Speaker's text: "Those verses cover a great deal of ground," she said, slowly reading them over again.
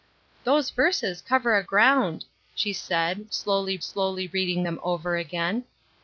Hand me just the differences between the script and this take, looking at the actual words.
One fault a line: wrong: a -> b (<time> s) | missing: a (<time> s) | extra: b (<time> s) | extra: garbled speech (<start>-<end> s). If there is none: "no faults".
missing: great deal of (1.6 s)
extra: slowly (3.8 s)